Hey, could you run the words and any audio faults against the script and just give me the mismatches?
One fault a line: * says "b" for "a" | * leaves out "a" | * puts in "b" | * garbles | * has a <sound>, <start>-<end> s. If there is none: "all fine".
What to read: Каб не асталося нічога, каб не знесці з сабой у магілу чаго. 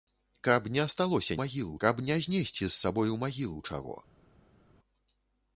* says "магілу" for "нічога"